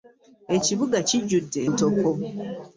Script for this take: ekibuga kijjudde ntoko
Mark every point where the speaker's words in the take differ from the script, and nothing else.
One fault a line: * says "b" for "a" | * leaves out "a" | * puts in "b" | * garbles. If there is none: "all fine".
all fine